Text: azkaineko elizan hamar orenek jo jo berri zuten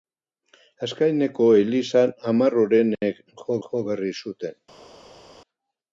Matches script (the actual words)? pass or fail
pass